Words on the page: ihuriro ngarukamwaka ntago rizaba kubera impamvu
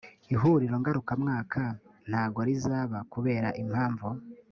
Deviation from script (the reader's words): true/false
false